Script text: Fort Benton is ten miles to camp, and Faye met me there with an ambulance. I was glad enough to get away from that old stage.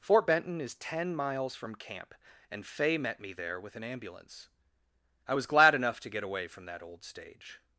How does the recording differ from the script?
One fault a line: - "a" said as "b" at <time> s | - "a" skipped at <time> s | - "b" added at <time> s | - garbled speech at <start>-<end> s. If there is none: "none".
- "to" said as "from" at 1.6 s